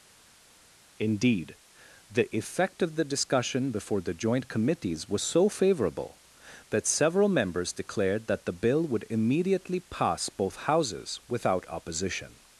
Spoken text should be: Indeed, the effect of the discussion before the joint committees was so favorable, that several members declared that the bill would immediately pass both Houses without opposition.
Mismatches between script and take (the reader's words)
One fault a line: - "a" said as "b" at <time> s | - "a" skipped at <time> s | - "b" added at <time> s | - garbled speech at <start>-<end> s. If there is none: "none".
none